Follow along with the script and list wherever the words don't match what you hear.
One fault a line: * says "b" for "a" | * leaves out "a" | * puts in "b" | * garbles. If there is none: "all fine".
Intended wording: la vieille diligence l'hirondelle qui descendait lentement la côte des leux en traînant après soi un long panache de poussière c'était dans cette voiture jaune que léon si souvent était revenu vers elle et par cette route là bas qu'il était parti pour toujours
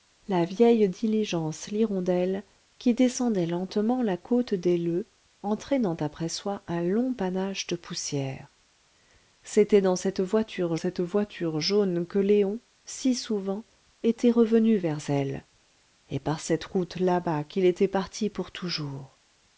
* puts in "cette voiture"